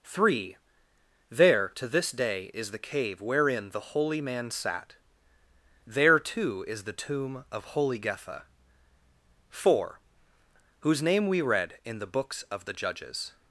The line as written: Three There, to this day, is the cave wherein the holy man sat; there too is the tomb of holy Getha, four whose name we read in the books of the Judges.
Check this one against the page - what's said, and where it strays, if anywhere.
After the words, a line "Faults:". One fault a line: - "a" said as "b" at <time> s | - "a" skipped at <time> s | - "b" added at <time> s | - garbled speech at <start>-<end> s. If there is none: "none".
Three There, to this day, is the cave wherein the holy man sat; there too is the tomb of holy Getha, four whose name we read in the books of the Judges.
Faults:
none